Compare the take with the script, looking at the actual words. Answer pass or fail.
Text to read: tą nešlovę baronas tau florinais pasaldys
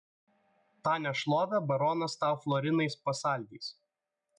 pass